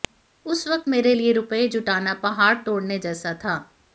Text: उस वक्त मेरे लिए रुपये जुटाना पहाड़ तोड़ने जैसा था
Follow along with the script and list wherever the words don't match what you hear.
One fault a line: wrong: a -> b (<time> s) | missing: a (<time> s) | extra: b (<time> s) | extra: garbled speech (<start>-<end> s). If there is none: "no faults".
no faults